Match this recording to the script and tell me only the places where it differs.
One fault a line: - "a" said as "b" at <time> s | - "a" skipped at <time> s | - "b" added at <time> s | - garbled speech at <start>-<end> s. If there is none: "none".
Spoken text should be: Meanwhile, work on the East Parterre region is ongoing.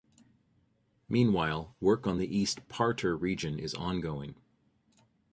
none